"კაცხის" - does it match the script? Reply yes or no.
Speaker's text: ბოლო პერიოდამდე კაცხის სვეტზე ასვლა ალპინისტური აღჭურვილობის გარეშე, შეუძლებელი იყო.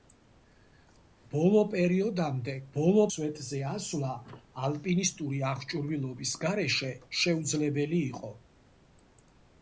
no